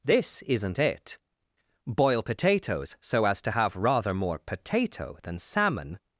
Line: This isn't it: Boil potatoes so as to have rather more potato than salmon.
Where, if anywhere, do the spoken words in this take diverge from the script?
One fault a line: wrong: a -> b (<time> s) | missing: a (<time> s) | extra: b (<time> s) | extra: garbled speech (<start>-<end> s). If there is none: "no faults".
no faults